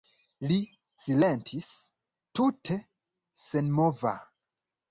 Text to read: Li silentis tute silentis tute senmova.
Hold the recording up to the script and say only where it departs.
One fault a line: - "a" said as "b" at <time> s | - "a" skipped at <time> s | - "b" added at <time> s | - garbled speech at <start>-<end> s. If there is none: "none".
- "silentis tute" skipped at 2.8 s